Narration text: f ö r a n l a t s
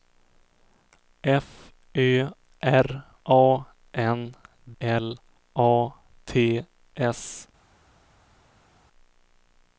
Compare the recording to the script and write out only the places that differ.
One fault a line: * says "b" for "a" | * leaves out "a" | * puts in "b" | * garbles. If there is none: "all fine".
all fine